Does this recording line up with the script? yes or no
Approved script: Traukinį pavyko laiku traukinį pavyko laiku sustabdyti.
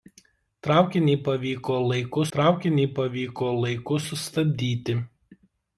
yes